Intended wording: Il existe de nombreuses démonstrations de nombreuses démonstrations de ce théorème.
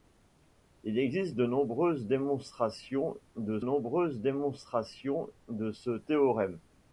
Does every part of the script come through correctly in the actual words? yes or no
yes